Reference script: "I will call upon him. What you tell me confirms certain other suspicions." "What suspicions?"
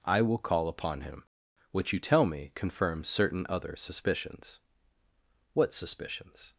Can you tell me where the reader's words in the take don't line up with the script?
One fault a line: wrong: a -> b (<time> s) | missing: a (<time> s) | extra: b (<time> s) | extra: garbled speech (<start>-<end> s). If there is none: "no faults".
no faults